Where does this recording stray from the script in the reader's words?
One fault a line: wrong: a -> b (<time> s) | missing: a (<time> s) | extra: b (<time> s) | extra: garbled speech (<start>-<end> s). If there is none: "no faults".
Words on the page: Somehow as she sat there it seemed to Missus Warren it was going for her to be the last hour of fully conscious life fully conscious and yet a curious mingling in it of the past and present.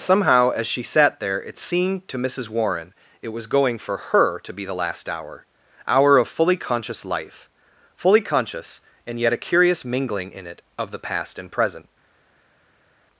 extra: hour (5.8 s)